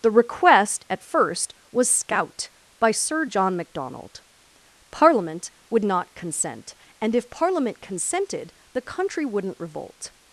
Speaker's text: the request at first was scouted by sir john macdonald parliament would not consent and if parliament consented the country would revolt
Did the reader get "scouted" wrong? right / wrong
wrong